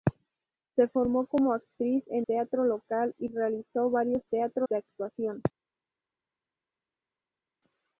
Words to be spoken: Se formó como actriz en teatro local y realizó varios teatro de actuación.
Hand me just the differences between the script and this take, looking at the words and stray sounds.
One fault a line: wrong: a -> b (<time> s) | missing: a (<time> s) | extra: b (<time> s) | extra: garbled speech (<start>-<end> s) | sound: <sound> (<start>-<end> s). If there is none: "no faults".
no faults